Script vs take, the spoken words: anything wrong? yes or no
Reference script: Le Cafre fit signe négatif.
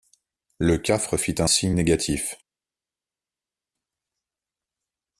yes